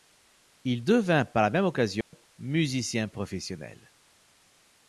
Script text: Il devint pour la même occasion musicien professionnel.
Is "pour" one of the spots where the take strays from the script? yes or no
yes